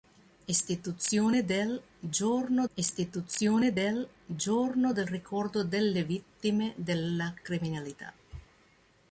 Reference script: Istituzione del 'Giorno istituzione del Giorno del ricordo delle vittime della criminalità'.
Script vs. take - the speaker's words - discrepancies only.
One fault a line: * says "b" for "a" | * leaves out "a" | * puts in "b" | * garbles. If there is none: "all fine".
all fine